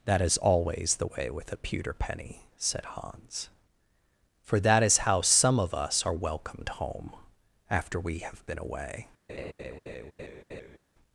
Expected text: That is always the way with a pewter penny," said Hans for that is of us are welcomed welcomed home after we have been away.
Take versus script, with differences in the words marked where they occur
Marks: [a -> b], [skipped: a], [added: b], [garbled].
That is always the way with a pewter penny," said Hans for that is [added: how some] of us are welcomed [skipped: welcomed] home after we have been away.